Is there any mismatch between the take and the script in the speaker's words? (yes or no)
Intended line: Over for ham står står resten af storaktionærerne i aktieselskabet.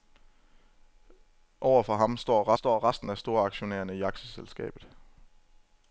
no